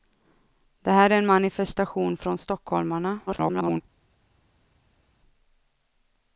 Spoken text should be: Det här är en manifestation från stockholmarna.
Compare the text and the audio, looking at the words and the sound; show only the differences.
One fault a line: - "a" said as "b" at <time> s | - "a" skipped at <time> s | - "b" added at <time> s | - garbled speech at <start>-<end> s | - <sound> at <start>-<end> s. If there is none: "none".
- garbled speech at 3.3-3.8 s